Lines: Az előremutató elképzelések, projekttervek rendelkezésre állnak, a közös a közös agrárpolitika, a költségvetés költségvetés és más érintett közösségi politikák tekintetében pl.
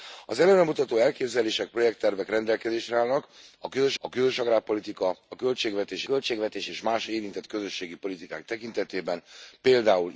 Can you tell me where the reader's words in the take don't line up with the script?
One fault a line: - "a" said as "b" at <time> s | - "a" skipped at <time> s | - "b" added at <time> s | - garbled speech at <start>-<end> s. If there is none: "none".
none